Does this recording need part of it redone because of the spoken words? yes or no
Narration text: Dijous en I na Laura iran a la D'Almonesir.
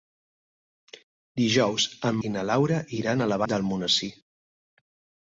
no